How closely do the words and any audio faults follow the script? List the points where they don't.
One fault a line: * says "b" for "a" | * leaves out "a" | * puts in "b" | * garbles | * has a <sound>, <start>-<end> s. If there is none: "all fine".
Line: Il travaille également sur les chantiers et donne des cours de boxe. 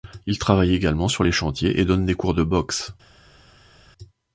all fine